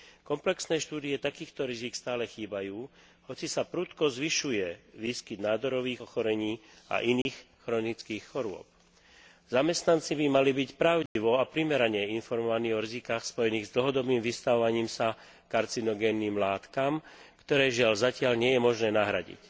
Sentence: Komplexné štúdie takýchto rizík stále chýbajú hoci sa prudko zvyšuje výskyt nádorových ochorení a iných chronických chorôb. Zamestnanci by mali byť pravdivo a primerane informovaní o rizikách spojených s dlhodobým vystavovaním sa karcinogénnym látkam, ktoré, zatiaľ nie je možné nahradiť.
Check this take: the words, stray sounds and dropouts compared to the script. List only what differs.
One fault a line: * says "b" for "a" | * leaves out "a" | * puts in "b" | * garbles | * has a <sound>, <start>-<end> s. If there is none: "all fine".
* has a dropout, 7.2-7.3 s
* has a dropout, 11.1-11.2 s
* puts in "žiaľ"